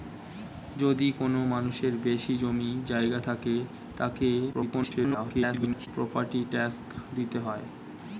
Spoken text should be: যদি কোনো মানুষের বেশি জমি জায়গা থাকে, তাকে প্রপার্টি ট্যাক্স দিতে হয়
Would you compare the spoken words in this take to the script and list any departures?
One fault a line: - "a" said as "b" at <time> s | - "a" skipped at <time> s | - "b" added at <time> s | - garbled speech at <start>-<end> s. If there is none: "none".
- garbled speech at 4.5-5.9 s